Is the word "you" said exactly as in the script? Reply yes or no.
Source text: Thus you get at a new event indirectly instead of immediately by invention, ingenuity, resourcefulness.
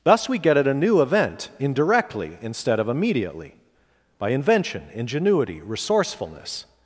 no